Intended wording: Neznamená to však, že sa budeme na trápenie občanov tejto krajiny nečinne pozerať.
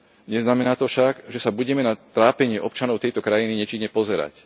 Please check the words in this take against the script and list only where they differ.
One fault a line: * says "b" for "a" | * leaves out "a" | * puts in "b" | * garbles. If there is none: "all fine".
all fine